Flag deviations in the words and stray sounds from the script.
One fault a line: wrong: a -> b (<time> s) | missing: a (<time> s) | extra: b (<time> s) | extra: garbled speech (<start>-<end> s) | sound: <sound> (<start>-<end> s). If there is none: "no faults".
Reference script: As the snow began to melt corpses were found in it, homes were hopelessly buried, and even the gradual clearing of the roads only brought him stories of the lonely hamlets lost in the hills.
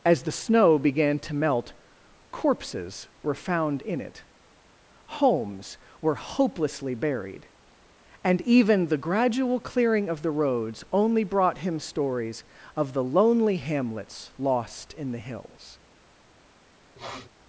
sound: sniff (17.0-17.3 s)